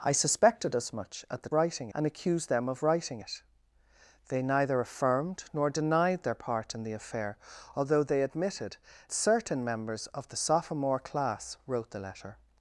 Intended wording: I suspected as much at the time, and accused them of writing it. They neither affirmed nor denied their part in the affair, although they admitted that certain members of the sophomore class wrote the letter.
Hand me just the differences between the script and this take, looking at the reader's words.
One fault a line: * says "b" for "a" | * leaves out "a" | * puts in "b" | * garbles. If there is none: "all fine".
* says "writing" for "time"
* leaves out "that"